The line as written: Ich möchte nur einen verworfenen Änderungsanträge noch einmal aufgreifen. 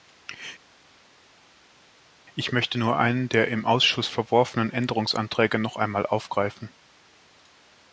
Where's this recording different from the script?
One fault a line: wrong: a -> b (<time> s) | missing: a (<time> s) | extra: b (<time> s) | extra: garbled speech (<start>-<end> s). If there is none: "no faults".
extra: der im Ausschuss (3.3 s)